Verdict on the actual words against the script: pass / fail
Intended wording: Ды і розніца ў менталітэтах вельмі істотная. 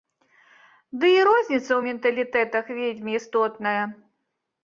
pass